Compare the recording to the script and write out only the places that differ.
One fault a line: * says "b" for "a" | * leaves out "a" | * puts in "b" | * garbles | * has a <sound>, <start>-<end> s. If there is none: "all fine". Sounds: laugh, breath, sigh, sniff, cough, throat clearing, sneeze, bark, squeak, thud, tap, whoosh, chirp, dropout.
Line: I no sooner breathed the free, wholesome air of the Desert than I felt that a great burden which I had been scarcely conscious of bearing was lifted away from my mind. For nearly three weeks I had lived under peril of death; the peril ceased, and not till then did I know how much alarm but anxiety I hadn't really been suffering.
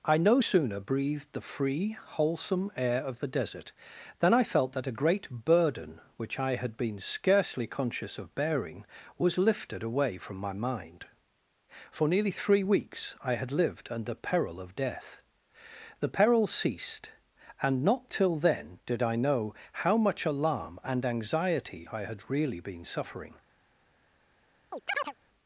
* says "and" for "but"
* says "had" for "hadn't"
* has a chirp, 24.7-25.1 s